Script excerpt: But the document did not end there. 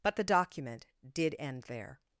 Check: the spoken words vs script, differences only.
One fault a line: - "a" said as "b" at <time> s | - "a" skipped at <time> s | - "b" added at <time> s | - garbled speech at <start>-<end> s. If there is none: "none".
- "not" skipped at 1.4 s